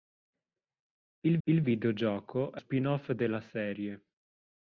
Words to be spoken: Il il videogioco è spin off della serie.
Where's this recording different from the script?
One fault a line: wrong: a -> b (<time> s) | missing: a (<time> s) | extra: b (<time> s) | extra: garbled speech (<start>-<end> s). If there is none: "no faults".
no faults